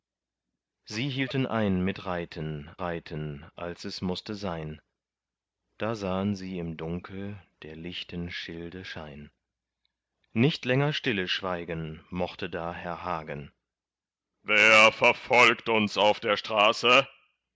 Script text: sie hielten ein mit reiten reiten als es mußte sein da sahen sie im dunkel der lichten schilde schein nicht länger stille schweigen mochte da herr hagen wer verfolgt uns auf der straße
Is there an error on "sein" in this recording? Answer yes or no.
no